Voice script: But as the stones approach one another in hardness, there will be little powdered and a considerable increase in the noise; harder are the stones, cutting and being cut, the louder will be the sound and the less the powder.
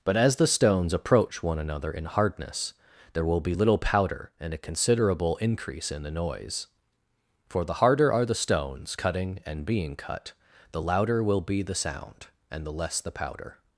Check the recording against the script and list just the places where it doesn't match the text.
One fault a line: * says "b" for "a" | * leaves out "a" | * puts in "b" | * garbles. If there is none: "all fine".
* says "powder" for "powdered"
* puts in "for the"